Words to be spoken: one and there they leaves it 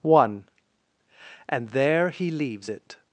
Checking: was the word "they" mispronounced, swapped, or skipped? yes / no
yes